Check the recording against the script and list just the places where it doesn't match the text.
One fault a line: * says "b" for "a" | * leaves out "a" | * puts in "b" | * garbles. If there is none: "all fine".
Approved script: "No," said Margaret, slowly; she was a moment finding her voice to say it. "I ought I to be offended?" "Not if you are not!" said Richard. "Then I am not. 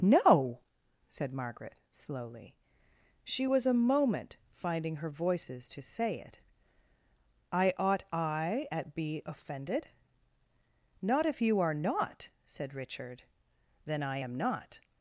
* says "voices" for "voice"
* says "at" for "to"